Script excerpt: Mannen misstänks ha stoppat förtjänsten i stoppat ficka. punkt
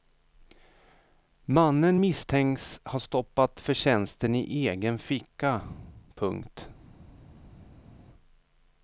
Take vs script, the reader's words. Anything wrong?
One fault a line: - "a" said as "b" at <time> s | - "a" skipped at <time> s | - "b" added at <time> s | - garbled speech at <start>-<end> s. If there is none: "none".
- "stoppat" said as "egen" at 4.7 s